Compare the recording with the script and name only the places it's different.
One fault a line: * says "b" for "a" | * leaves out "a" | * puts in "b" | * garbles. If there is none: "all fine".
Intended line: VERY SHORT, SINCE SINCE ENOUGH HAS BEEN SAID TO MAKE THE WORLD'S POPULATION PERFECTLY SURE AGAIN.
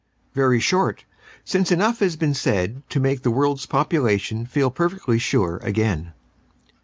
* leaves out "SINCE"
* puts in "FEEL"